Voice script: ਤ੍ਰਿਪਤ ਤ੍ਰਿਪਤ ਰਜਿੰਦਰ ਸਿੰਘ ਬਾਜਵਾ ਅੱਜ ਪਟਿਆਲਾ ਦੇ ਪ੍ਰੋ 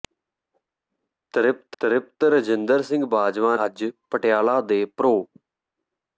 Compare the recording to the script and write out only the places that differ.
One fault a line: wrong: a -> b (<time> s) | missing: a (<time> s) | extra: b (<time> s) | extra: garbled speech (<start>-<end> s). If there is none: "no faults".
no faults